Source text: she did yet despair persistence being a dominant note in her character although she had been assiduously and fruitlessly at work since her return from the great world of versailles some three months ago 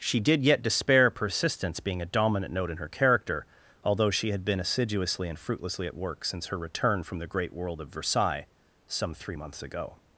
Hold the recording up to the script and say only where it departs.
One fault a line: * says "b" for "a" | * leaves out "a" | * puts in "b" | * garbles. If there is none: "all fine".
all fine